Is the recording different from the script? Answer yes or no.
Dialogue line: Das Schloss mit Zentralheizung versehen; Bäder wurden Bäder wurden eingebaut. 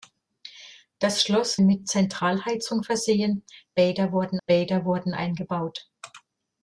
no